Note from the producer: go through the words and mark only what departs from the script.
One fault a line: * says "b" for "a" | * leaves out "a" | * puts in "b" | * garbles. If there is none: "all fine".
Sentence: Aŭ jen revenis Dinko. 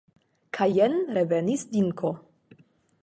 * says "Kaj" for "Aŭ"